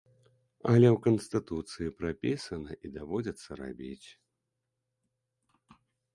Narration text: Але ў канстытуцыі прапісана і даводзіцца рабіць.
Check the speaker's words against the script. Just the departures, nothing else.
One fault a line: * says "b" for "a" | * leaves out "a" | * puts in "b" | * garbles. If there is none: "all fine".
all fine